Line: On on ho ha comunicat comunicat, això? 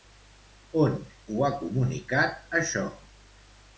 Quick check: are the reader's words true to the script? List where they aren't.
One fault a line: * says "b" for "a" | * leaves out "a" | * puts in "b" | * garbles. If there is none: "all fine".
* leaves out "on"
* leaves out "comunicat"